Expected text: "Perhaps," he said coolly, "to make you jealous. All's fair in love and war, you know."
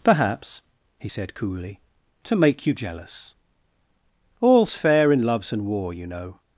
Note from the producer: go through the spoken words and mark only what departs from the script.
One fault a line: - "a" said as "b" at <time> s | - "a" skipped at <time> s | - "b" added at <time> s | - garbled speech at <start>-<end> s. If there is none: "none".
- "love" said as "loves" at 5.2 s